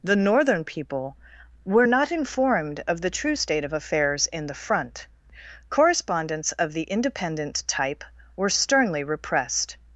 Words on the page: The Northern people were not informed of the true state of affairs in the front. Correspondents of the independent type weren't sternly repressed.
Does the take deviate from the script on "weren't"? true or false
true